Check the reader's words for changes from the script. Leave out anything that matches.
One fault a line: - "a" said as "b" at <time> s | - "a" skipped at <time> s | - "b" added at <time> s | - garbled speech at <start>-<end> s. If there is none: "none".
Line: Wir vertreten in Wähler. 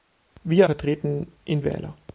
none